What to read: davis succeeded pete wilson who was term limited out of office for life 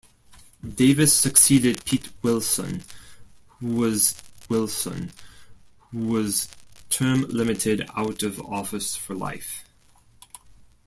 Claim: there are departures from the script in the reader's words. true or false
true